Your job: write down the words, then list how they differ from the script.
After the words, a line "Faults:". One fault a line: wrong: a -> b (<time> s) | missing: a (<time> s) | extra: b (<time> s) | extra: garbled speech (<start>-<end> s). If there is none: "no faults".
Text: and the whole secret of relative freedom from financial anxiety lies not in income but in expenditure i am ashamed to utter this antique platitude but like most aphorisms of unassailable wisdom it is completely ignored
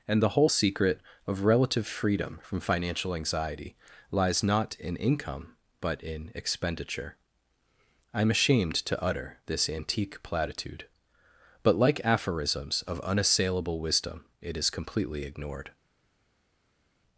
and the whole secret of relative freedom from financial anxiety lies not in income but in expenditure i am ashamed to utter this antique platitude but like aphorisms of unassailable wisdom it is completely ignored
Faults:
missing: most (12.0 s)